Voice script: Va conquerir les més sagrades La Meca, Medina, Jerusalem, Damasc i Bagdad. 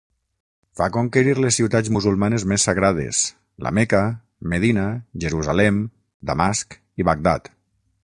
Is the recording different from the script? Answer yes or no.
yes